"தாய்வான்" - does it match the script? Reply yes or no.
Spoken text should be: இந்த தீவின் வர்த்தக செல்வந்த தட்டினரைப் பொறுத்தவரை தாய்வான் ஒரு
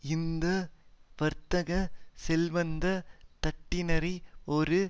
no